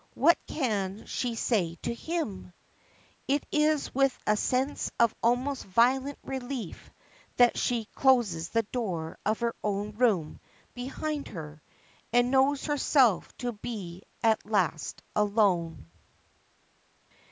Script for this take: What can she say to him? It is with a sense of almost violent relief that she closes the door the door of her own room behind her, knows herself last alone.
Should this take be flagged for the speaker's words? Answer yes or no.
yes